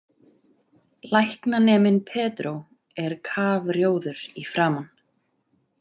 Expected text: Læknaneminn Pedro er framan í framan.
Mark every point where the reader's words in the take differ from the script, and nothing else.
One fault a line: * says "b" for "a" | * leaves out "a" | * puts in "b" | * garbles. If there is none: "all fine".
* says "kafrjóður" for "framan"